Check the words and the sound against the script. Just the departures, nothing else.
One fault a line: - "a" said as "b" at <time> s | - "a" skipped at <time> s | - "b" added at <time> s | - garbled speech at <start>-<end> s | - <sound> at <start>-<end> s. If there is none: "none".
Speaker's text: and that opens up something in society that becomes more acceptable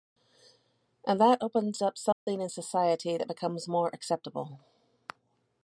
- dropout at 2.1-2.3 s